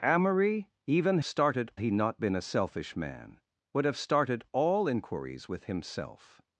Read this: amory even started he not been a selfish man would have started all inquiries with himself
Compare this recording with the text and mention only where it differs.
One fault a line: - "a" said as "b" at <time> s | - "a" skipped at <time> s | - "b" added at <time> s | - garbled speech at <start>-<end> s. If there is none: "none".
none